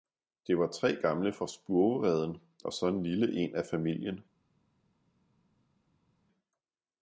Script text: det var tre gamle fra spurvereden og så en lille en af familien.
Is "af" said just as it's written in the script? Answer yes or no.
yes